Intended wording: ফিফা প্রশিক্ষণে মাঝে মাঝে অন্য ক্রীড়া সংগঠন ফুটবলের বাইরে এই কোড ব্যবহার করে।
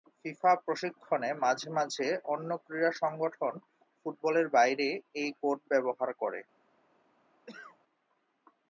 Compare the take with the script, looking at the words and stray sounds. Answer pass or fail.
fail